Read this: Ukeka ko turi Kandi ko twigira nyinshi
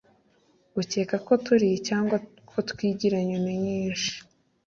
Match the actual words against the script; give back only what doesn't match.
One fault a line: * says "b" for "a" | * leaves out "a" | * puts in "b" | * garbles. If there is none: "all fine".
* says "Cyangwa" for "Kandi"
* puts in "nyoni"